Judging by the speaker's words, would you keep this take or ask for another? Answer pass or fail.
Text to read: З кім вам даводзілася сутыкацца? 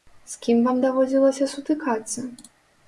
pass